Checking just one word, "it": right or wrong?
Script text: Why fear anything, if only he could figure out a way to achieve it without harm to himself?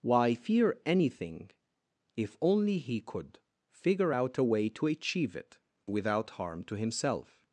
right